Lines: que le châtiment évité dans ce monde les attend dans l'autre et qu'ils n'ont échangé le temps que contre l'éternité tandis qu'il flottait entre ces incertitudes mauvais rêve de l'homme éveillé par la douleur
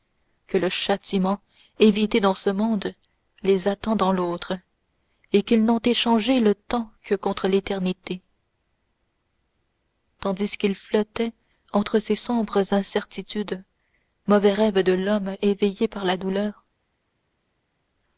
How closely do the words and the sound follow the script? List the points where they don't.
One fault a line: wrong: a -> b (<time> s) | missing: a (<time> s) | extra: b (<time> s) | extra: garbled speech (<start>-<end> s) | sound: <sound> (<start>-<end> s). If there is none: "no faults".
extra: sombres (12.2 s)